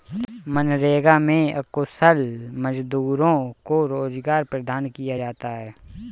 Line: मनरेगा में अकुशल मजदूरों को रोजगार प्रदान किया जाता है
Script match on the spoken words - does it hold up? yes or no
yes